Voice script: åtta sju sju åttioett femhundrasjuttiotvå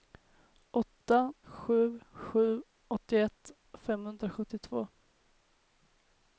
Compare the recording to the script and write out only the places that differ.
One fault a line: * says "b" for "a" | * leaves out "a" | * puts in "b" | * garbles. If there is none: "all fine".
all fine